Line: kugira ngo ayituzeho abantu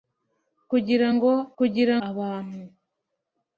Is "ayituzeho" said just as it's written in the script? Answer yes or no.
no